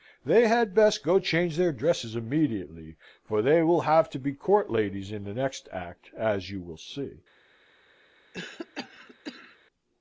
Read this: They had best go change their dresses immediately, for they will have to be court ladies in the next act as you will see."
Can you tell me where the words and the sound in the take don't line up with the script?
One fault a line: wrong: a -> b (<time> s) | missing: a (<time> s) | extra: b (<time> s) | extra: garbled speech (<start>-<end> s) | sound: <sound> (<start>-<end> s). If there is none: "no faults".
sound: cough (8.3-9.6 s)